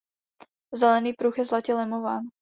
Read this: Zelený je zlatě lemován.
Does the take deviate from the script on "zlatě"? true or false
false